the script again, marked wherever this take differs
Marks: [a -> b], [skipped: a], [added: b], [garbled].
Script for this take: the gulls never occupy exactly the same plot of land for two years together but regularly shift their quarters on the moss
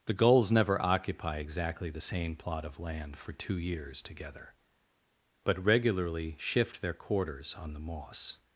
the gulls never occupy exactly the same plot of land for two years together but regularly shift their quarters on the moss